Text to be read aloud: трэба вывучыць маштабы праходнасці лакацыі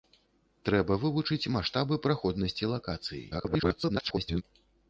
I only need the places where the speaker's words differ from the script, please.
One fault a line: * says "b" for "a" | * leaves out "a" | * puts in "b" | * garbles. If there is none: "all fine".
* garbles